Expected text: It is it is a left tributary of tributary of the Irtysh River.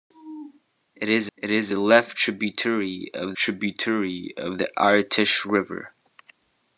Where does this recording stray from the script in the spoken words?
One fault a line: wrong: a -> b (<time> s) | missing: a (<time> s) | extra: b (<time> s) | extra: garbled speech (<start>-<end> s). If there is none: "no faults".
no faults